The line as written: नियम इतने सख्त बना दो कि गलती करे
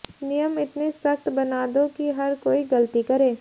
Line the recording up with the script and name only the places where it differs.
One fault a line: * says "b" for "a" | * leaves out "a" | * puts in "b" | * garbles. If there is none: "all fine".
* puts in "हर कोई"